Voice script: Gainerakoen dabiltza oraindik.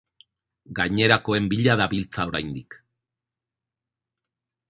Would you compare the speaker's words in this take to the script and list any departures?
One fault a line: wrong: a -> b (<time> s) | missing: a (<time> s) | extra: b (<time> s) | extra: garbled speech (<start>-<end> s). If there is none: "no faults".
extra: bila (1.5 s)